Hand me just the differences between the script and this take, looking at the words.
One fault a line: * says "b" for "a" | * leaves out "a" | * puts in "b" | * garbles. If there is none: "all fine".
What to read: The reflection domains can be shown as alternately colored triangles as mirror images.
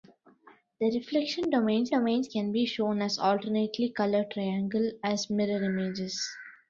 * puts in "domains"